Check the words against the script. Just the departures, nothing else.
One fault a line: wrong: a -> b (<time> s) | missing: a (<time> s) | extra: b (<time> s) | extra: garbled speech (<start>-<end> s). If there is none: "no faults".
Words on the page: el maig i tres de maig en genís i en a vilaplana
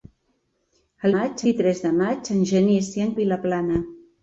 no faults